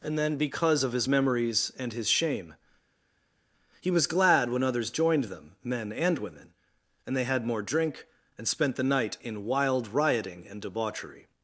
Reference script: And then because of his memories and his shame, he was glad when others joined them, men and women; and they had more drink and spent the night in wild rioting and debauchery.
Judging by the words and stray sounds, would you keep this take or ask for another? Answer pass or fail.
pass